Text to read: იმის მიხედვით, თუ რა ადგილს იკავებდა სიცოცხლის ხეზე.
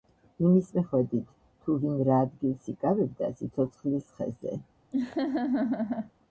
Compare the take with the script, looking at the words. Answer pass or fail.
fail